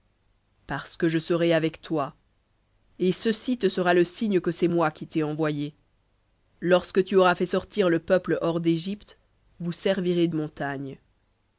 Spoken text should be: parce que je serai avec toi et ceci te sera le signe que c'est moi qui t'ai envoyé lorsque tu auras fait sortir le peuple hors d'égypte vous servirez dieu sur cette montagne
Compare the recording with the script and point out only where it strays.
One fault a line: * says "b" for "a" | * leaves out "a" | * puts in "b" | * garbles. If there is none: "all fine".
* leaves out "dieu sur cette"